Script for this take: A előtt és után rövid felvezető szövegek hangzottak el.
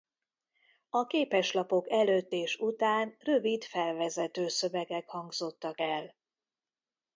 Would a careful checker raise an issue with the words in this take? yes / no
yes